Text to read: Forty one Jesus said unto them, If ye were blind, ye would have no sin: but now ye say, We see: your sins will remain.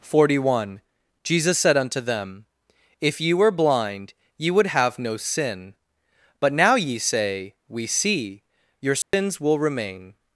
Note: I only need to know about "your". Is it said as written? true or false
true